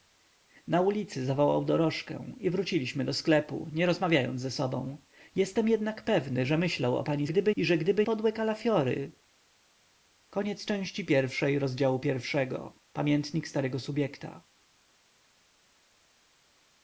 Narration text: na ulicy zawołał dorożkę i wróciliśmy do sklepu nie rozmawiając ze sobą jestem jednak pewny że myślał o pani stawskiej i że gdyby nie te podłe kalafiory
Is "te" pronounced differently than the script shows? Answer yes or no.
yes